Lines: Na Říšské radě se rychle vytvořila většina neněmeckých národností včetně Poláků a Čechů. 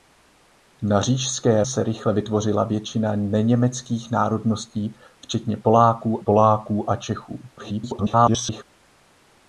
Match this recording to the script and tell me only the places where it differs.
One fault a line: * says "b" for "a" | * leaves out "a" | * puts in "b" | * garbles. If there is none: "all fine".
* leaves out "radě"
* puts in "Poláků"
* garbles